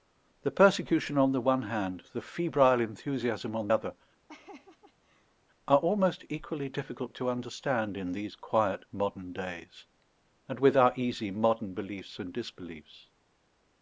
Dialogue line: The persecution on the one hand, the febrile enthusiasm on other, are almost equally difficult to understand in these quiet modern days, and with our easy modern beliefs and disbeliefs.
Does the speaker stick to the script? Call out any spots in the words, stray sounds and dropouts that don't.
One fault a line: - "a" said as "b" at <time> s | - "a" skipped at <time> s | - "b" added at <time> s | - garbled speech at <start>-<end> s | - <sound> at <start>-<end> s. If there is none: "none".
- laugh at 4.3-5.4 s